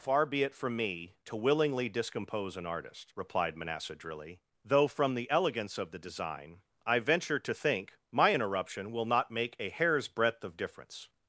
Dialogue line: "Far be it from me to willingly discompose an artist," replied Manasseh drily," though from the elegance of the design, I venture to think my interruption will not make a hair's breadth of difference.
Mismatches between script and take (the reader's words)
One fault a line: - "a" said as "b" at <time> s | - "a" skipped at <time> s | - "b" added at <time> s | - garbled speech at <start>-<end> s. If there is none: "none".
none